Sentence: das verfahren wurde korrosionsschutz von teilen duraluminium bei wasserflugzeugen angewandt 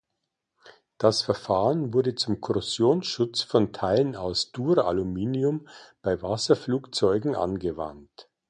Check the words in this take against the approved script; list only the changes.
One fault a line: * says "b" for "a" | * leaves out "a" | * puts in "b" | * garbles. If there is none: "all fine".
* puts in "zum"
* puts in "aus"